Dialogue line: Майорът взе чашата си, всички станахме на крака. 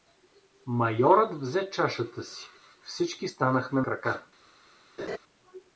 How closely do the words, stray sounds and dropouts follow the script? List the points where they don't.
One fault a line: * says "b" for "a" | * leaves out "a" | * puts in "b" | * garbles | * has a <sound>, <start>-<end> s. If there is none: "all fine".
* leaves out "на"
* has a laugh, 5.0-5.2 s